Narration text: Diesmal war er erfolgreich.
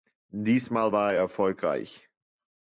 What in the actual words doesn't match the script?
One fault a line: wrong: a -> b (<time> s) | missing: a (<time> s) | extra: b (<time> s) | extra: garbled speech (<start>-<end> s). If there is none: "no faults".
no faults